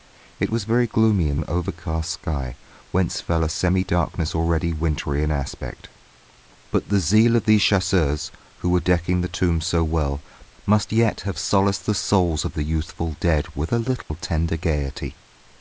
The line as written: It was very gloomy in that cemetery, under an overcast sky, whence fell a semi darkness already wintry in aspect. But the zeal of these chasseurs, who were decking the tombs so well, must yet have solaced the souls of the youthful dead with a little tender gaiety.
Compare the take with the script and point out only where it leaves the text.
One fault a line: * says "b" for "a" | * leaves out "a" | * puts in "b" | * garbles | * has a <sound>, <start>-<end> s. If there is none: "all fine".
* leaves out "that cemetery under"
* has a dropout, 14.0-14.1 s